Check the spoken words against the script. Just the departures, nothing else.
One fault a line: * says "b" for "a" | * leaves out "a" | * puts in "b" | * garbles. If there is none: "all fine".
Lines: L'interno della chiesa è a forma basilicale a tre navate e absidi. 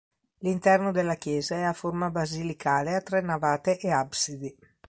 all fine